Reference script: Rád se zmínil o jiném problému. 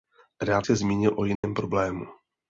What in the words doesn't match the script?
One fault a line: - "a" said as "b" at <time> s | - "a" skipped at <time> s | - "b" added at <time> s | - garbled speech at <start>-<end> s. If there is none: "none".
none